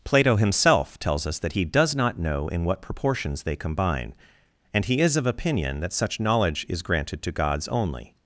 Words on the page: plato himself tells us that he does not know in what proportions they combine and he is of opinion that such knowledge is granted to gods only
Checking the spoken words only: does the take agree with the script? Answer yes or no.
yes